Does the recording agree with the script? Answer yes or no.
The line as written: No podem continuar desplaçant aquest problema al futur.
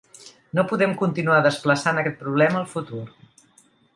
yes